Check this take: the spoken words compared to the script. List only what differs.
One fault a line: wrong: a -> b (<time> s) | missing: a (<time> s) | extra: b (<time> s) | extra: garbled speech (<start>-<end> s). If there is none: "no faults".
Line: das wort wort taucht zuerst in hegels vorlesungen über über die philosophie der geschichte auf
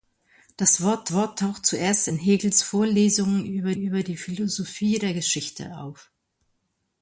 no faults